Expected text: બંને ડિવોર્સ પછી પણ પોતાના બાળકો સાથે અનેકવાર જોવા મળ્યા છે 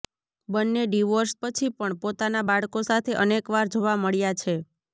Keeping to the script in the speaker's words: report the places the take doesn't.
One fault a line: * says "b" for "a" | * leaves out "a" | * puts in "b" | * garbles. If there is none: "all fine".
all fine